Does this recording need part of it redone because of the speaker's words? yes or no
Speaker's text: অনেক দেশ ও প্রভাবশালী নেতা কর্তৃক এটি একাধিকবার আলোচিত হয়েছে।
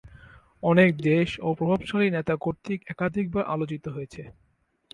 yes